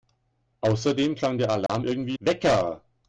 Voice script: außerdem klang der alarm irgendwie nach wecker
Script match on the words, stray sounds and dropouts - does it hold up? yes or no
no